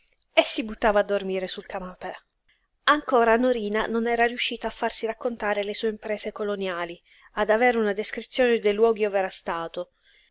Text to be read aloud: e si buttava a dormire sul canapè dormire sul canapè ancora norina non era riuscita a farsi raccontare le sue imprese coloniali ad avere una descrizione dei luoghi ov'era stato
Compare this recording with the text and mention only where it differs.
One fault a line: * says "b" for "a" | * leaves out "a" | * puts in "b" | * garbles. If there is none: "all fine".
* leaves out "dormire sul canapè"